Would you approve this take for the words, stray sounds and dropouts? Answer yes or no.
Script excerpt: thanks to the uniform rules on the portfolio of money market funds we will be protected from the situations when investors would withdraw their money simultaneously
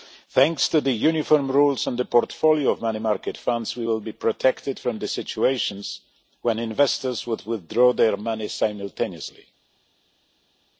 yes